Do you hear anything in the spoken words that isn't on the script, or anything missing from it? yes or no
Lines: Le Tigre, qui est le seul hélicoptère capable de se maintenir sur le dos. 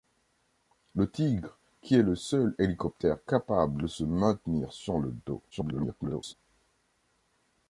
yes